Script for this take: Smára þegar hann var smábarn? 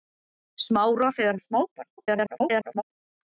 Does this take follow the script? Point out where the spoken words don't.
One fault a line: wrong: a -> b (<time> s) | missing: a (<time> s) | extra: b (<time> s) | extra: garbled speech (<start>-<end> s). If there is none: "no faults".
missing: hann (1.4 s)
extra: garbled speech (2.0-2.8 s)